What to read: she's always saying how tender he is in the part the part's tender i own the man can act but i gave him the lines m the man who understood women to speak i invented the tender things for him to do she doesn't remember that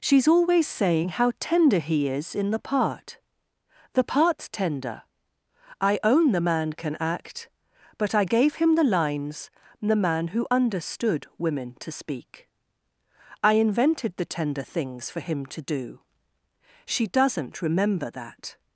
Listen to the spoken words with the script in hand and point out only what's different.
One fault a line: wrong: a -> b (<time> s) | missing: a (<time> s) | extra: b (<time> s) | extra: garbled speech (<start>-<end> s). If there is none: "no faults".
missing: m (9.5 s)